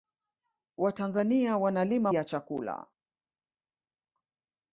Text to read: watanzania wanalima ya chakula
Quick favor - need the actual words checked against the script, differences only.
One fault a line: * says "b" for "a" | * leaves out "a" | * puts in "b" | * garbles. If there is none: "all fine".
all fine